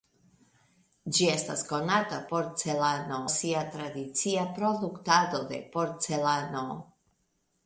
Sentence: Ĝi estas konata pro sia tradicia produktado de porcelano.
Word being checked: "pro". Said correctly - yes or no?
no